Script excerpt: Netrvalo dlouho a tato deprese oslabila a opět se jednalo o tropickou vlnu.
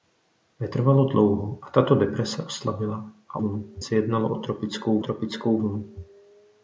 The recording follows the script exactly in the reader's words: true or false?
false